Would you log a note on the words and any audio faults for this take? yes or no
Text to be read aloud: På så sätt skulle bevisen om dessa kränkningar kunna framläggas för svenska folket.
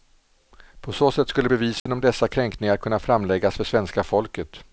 yes